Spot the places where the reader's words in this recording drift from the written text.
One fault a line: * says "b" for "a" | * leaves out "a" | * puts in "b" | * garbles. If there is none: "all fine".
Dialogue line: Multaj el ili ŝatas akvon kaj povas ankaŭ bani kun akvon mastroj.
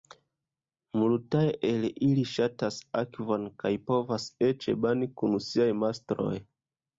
* says "eĉ" for "ankaŭ"
* says "siaj" for "akvon"